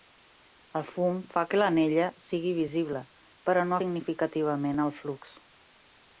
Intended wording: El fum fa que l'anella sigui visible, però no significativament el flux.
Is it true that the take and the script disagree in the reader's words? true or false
false